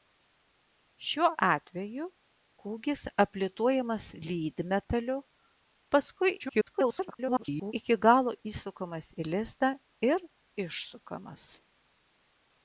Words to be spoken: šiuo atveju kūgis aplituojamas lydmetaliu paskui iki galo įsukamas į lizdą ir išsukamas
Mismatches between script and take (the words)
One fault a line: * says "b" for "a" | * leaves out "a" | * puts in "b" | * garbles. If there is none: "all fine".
* garbles